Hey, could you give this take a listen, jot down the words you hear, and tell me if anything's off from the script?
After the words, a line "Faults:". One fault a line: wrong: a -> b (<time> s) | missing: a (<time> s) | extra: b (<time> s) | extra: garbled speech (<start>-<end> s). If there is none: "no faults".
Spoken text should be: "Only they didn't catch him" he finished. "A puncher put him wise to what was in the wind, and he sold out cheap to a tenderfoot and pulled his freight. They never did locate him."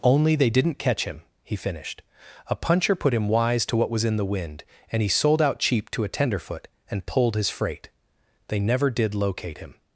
"Only they didn't catch him" he finished. "A puncher put him wise to what was in the wind, and he sold out cheap to a tenderfoot and pulled his freight. They never did locate him."
Faults:
no faults